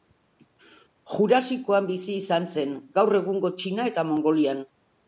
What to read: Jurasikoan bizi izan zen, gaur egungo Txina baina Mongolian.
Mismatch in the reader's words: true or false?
true